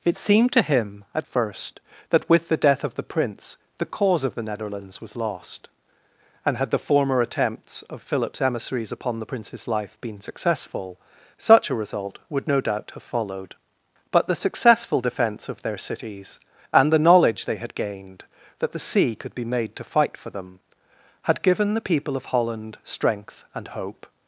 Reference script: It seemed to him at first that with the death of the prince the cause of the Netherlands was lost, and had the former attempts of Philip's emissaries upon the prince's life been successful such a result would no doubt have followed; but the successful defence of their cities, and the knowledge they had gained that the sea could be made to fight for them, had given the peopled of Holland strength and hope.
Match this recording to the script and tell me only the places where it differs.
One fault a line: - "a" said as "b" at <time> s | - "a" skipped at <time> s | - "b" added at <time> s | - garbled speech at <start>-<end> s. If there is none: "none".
- "peopled" said as "people" at 21.8 s